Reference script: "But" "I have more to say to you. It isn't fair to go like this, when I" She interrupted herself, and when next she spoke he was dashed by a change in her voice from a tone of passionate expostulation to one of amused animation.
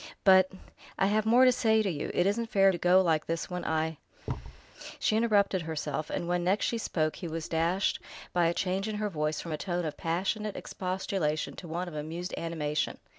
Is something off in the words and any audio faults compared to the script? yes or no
yes